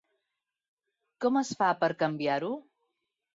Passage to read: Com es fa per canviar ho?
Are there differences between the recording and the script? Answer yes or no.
no